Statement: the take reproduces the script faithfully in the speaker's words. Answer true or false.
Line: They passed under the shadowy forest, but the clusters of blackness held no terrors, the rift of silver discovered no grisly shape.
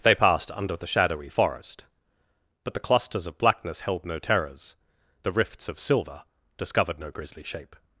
false